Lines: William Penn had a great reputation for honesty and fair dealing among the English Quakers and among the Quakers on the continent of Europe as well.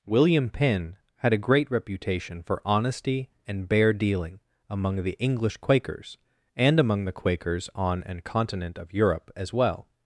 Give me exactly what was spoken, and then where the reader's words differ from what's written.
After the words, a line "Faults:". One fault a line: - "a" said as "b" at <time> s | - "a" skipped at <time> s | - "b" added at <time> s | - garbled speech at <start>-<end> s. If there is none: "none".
William Penn had a great reputation for honesty and bare dealing among the English Quakers and among the Quakers on an continent of Europe as well.
Faults:
- "fair" said as "bare" at 3.7 s
- "the" said as "an" at 8.0 s